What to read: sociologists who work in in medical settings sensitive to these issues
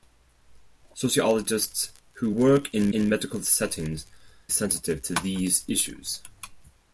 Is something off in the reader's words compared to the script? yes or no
no